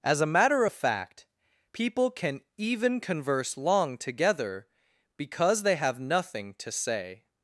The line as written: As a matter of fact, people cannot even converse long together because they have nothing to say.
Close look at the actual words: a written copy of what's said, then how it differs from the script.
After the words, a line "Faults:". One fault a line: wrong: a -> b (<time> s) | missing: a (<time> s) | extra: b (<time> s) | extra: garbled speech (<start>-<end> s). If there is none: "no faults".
As a matter of fact, people can even converse long together because they have nothing to say.
Faults:
wrong: cannot -> can (2.1 s)